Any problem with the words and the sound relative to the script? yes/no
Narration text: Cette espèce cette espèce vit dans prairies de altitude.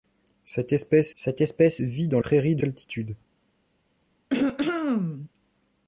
yes